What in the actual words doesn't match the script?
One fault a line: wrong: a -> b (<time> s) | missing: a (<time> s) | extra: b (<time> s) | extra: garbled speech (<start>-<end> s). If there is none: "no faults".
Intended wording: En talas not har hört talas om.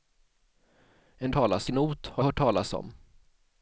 no faults